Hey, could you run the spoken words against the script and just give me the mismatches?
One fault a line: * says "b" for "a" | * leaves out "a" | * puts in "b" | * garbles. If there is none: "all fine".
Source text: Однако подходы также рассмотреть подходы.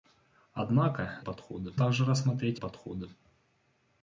all fine